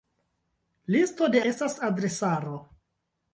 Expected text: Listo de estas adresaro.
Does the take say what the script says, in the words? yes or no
yes